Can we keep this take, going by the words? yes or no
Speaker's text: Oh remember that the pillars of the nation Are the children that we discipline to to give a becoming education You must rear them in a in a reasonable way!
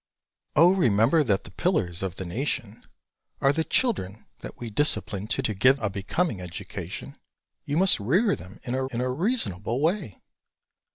yes